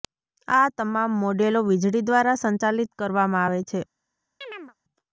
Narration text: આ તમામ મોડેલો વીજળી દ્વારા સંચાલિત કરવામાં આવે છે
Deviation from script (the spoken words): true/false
false